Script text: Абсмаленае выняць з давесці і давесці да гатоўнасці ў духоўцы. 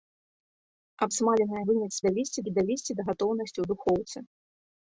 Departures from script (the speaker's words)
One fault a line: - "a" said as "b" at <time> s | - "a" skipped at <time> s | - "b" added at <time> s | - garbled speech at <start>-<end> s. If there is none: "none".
none